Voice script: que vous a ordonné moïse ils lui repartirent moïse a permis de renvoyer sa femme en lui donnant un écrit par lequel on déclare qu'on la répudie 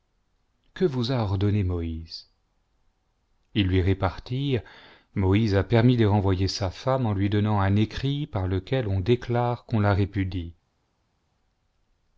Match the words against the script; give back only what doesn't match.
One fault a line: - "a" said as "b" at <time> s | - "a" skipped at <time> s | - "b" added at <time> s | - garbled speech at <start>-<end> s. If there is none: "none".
none